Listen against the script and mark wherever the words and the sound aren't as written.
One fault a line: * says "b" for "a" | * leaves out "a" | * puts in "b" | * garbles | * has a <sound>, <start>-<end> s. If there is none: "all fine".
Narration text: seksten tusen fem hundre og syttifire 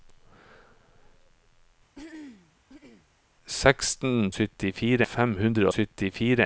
* has a throat clearing, 1.9-3.1 s
* says "syttifire" for "tusen"
* leaves out "og"